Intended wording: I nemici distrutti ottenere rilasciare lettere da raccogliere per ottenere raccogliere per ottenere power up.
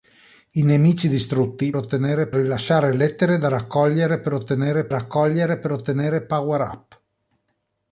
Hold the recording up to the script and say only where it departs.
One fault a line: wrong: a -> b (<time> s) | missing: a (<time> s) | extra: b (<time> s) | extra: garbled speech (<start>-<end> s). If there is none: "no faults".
no faults